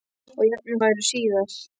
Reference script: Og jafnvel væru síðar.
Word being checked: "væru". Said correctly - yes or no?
yes